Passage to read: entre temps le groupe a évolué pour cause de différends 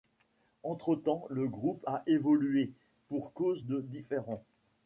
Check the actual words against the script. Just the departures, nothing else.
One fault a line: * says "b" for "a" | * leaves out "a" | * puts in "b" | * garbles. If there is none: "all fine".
all fine